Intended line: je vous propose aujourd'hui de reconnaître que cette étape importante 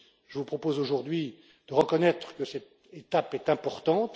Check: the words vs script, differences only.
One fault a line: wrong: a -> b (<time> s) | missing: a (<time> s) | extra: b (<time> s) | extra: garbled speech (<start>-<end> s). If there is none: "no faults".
extra: est (3.3 s)